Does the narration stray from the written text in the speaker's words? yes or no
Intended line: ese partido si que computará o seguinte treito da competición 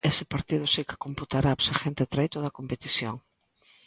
no